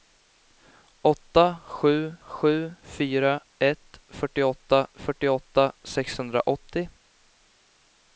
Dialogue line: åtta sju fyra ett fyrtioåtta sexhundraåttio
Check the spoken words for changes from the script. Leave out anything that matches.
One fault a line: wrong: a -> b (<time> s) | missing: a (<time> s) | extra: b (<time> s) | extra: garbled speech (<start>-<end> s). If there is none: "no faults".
extra: sju (2.3 s)
extra: fyrtioåtta (4.9 s)